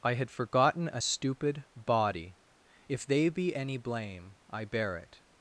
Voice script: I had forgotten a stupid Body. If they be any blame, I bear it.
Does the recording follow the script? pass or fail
pass